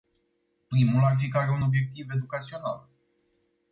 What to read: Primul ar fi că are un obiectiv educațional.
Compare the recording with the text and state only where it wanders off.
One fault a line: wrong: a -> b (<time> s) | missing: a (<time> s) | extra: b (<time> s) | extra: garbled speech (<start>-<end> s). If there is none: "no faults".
no faults